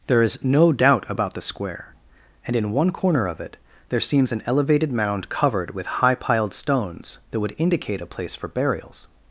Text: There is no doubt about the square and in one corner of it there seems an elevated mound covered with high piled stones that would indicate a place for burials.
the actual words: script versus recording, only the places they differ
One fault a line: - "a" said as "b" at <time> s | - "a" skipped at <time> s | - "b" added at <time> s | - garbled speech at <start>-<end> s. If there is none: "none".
none